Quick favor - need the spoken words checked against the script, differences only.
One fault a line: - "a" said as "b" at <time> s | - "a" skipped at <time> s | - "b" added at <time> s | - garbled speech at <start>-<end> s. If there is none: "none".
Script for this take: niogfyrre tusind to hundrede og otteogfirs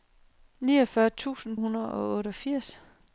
- "to" skipped at 1.6 s